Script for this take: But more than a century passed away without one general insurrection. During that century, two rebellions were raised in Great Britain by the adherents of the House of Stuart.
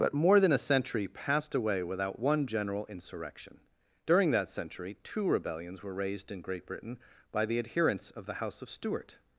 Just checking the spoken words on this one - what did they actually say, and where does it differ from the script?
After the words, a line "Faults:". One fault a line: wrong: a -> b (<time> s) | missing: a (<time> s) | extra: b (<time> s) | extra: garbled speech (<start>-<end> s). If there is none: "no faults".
But more than a century passed away without one general insurrection. During that century, two rebellions were raised in Great Britain by the adherents of the House of Stuart.
Faults:
no faults